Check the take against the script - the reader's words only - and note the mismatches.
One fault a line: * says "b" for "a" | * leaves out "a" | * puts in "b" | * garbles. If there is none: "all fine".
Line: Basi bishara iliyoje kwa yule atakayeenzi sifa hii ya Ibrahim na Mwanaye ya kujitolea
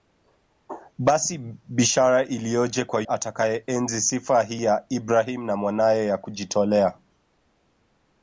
* leaves out "yule"